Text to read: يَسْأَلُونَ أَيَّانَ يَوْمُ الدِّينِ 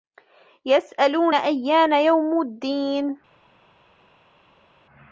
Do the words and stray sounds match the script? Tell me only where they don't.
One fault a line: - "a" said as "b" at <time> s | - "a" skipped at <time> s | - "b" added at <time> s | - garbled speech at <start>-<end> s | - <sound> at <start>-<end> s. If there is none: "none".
none